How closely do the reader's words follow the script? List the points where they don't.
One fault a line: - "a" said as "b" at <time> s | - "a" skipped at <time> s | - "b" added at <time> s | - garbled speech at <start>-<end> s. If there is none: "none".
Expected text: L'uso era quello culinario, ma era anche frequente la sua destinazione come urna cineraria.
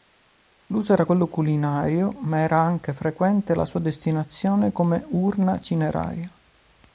none